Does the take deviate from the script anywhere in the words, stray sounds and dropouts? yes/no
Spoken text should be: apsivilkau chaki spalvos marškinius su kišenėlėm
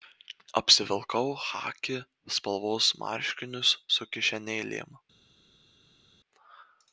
no